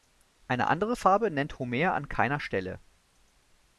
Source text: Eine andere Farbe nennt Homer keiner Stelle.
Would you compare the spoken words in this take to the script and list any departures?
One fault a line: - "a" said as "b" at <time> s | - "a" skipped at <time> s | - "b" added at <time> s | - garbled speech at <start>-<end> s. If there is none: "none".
- "an" added at 1.9 s